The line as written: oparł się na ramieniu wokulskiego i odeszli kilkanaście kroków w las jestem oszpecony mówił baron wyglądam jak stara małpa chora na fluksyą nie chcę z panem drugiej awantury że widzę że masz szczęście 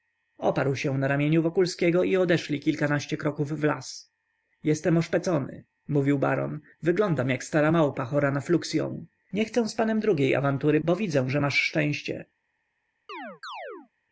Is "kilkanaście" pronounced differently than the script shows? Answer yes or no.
no